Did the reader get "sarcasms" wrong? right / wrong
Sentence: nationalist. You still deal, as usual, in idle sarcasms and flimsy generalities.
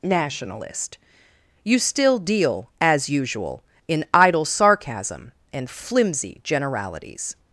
wrong